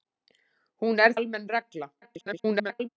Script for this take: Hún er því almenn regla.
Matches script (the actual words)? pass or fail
fail